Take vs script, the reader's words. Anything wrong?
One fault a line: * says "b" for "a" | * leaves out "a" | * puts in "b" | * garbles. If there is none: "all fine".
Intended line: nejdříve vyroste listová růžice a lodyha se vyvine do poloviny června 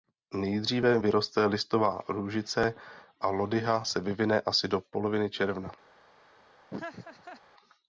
* puts in "asi"